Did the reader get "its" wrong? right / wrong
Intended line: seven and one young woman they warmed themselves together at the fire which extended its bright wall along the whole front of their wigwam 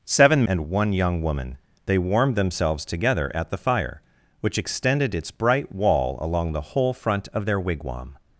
right